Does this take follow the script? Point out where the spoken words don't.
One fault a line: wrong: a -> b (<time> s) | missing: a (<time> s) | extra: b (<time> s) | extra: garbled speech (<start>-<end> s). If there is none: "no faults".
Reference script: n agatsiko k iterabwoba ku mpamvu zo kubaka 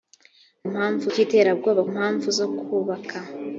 wrong: agatsiko -> mpamvu (0.7 s)
missing: ku (1.8 s)